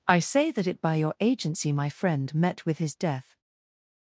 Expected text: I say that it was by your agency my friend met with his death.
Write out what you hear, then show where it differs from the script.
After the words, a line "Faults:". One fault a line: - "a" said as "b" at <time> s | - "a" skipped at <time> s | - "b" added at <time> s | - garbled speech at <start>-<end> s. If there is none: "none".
I say that it by your agency my friend met with his death.
Faults:
- "was" skipped at 0.8 s